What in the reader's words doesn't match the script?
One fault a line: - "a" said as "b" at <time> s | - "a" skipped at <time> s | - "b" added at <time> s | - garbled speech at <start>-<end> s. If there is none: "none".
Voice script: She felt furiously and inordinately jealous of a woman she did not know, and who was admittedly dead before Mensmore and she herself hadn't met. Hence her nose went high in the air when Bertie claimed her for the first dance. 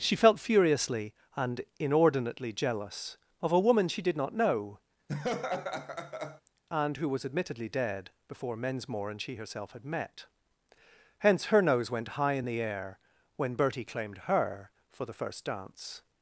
- "hadn't" said as "had" at 9.7 s